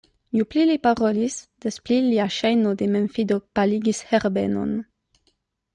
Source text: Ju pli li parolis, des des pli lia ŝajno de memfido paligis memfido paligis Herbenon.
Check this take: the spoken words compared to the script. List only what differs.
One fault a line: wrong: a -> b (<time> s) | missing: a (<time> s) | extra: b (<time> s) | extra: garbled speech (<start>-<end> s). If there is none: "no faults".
missing: des (1.8 s)
missing: memfido paligis (4.0 s)